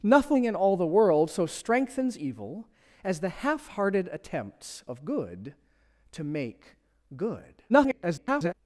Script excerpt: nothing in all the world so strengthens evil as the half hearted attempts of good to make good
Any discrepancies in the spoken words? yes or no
yes